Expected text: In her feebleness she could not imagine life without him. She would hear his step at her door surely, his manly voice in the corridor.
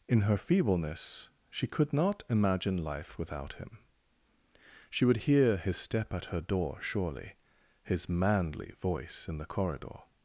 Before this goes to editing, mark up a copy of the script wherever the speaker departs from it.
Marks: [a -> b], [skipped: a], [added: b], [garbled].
In her feebleness she could not imagine life without him. She would hear his step at her door surely, his manly voice in the corridor.